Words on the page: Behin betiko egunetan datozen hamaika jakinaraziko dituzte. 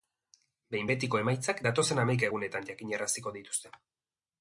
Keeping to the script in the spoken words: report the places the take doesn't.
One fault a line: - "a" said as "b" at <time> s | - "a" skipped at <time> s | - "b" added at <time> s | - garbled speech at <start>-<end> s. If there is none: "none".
- "egunetan" said as "emaitzak" at 1.2 s
- "egunetan" added at 2.3 s